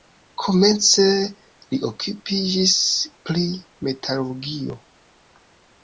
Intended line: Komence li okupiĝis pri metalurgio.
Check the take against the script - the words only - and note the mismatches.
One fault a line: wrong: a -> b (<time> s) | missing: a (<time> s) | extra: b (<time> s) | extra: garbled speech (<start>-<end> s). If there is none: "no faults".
no faults